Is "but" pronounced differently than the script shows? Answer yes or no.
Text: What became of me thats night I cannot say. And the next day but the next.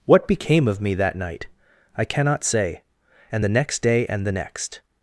yes